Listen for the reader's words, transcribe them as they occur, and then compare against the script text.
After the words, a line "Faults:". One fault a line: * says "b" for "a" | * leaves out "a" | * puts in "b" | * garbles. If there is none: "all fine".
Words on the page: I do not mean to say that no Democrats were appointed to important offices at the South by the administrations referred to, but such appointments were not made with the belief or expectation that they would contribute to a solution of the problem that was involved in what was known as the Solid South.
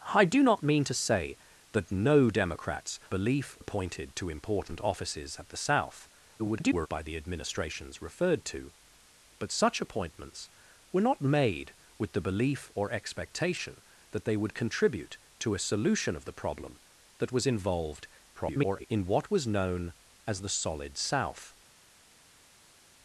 I do not mean to say that no Democrats belief appointed to important offices at the South [garbled] by the administrations referred to, but such appointments were not made with the belief or expectation that they would contribute to a solution of the problem that was involved [garbled] in what was known as the Solid South.
Faults:
* says "belief" for "were"
* garbles
* garbles